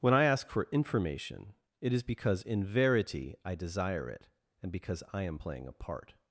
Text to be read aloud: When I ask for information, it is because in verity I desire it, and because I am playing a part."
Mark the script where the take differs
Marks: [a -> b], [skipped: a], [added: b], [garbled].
When I ask for information, it is because in verity I desire it, and because I am playing a part."